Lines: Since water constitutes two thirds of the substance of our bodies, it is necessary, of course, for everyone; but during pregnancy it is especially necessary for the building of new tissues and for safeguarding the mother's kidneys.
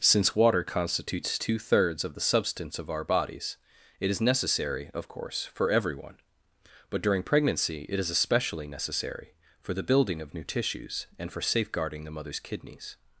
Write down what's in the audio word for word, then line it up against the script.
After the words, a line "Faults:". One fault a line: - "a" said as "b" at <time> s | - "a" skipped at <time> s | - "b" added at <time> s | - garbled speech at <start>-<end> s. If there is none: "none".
Since water constitutes two thirds of the substance of our bodies, it is necessary, of course, for everyone; but during pregnancy it is especially necessary for the building of new tissues and for safeguarding the mother's kidneys.
Faults:
none